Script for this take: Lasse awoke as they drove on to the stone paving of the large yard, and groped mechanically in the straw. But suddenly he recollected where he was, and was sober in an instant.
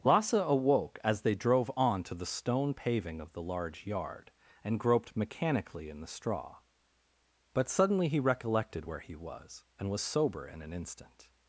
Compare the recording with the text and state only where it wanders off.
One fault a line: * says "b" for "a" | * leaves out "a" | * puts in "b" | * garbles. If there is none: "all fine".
all fine